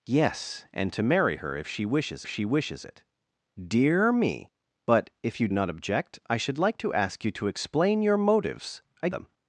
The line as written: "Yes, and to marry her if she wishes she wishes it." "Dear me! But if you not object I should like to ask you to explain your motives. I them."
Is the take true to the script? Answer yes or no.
yes